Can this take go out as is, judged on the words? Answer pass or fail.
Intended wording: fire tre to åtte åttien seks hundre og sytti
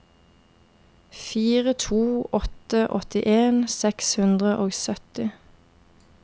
fail